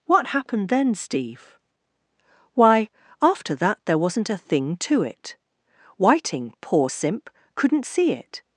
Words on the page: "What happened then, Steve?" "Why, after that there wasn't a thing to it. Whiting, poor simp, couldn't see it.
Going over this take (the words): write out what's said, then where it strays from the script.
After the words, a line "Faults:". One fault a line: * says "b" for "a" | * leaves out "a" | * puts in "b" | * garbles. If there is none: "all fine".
"What happened then, Steve?" "Why, after that there wasn't a thing to it. Whiting, poor simp, couldn't see it.
Faults:
all fine